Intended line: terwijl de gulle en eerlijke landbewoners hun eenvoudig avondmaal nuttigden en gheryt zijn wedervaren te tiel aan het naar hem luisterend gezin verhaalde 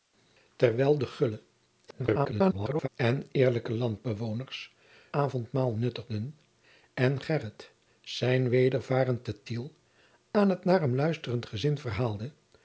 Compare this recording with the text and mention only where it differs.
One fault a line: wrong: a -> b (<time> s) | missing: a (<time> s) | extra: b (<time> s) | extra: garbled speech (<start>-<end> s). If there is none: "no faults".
extra: garbled speech (1.9-2.9 s)
missing: hun eenvoudig (4.7 s)